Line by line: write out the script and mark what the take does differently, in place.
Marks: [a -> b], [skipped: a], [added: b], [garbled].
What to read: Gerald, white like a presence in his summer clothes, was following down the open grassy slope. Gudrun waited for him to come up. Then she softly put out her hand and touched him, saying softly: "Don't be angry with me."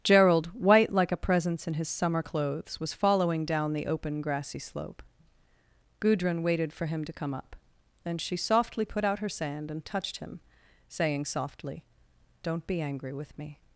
Gerald, white like a presence in his summer clothes, was following down the open grassy slope. Gudrun waited for him to come up. Then she softly put out her [hand -> sand] and touched him, saying softly: "Don't be angry with me."